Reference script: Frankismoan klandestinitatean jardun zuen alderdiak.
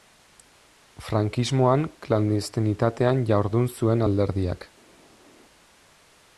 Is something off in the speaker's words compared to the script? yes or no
no